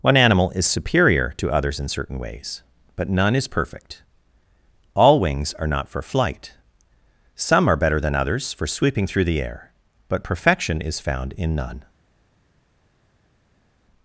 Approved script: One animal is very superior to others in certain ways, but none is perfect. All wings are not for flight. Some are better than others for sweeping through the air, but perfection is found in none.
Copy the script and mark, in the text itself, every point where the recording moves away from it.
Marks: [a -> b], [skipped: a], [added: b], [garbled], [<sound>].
One animal is [skipped: very] superior to others in certain ways, but none is perfect. All wings are not for flight. Some are better than others for sweeping through the air, but perfection is found in none.